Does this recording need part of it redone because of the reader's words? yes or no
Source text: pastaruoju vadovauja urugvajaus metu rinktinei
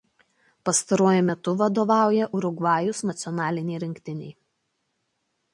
yes